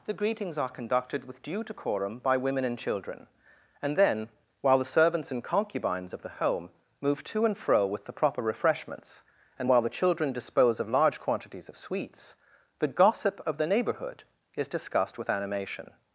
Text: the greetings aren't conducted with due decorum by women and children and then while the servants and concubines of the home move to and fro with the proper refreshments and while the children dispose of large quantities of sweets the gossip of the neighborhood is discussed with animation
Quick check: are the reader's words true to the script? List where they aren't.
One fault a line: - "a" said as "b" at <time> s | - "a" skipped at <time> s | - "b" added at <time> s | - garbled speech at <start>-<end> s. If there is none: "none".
- "aren't" said as "are" at 0.6 s